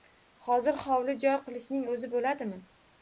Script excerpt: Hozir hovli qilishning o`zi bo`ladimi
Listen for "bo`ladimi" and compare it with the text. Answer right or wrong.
right